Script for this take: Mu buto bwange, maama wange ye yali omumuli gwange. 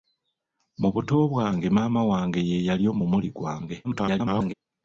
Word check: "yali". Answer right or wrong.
right